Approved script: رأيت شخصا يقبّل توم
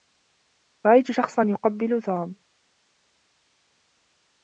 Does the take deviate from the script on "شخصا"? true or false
false